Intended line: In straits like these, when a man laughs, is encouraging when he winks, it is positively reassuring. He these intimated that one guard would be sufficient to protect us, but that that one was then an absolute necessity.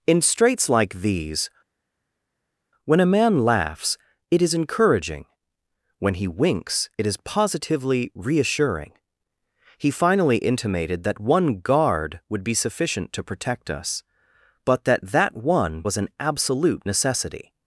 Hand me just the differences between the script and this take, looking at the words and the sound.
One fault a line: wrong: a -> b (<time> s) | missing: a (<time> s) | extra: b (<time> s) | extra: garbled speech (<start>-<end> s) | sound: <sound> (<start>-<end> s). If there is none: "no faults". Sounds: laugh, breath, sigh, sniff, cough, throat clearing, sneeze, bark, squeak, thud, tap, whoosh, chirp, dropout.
extra: it (4.3 s)
wrong: these -> finally (9.9 s)
missing: then (16.0 s)